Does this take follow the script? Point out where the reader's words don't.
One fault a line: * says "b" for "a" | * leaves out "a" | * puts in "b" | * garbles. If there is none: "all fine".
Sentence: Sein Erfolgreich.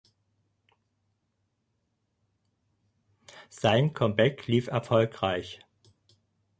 * puts in "Comeback lief"